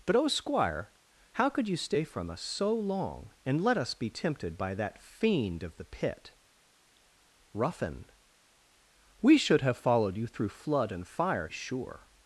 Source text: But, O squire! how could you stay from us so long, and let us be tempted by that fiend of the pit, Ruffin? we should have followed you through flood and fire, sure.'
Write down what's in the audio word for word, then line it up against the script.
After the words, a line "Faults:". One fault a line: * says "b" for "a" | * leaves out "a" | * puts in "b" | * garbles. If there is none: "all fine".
But, O squire! how could you stay from us so long, and let us be tempted by that fiend of the pit, Ruffin? we should have followed you through flood and fire, sure.'
Faults:
all fine